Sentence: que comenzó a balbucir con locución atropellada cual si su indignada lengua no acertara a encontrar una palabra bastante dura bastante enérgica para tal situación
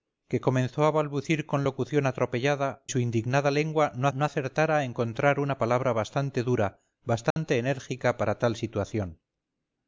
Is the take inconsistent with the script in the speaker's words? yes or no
yes